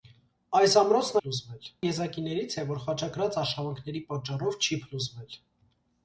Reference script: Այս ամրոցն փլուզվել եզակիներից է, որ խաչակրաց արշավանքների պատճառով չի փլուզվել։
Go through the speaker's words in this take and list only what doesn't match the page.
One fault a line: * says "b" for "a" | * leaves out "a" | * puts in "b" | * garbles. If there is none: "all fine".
all fine